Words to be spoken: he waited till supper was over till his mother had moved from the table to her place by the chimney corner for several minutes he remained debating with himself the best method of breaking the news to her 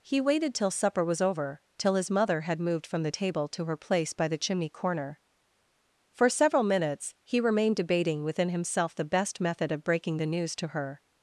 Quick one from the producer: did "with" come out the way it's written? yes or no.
no